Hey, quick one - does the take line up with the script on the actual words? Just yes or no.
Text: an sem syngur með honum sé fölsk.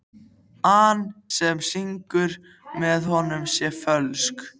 yes